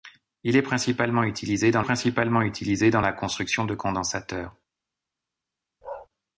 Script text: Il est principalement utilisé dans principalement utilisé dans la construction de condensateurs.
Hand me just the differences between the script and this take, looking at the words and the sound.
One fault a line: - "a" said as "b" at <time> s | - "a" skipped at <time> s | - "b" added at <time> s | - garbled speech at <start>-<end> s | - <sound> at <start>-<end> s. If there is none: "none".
- bark at 5.8-6.1 s